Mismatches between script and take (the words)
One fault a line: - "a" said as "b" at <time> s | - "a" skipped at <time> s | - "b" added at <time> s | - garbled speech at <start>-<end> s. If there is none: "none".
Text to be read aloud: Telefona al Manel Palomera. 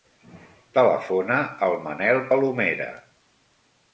none